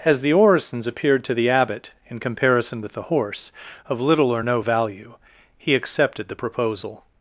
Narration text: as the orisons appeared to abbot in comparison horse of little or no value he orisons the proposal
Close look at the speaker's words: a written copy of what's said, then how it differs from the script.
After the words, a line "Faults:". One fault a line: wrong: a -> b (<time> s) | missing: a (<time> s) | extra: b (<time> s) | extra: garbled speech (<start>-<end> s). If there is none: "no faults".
as the orisons appeared to the abbot in comparison with the horse of little or no value he accepted the proposal
Faults:
extra: the (1.4 s)
extra: with the (2.8 s)
wrong: orisons -> accepted (5.7 s)